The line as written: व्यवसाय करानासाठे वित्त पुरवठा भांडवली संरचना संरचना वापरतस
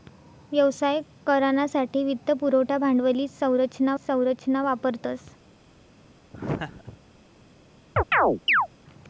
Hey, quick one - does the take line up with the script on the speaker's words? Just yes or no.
yes